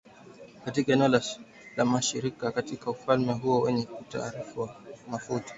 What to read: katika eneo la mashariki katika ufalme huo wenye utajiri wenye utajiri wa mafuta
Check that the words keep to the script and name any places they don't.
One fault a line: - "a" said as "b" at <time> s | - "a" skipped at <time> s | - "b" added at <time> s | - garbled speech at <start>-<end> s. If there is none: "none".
- "wenye utajiri" skipped at 4.4 s